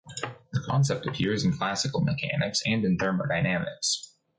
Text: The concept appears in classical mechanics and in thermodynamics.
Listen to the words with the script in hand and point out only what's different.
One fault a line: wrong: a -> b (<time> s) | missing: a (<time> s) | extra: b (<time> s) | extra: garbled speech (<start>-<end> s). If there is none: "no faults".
no faults